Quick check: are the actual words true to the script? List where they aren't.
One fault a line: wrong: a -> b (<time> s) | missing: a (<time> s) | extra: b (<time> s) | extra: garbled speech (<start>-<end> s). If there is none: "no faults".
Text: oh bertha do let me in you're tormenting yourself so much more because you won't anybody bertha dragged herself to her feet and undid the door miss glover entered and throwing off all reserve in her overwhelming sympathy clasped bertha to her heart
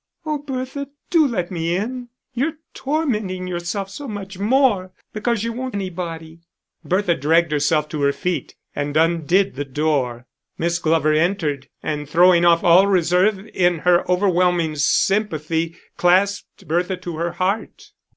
no faults